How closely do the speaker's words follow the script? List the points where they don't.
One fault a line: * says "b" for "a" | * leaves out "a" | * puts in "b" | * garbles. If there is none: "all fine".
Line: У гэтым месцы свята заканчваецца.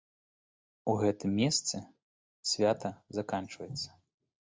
all fine